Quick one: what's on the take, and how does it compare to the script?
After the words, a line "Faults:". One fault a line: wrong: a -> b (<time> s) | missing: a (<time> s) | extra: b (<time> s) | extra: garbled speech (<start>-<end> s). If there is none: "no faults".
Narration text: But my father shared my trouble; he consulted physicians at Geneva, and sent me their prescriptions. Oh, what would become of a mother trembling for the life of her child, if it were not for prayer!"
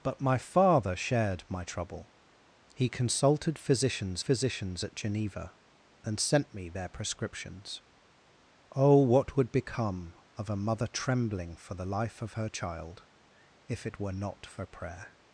But my father shared my trouble; he consulted physicians physicians at Geneva, and sent me their prescriptions. Oh, what would become of a mother trembling for the life of her child, if it were not for prayer!"
Faults:
extra: physicians (4.2 s)